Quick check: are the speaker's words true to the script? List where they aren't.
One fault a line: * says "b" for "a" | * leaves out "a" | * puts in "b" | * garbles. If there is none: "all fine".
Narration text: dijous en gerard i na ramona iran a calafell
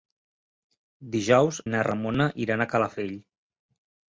* leaves out "en gerard"